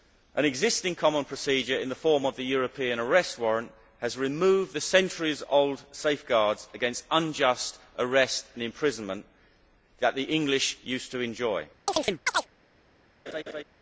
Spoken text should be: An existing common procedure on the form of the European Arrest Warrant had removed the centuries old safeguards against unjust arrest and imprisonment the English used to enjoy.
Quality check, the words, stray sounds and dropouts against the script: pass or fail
fail